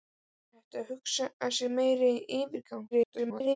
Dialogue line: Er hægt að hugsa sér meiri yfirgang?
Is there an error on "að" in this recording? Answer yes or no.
no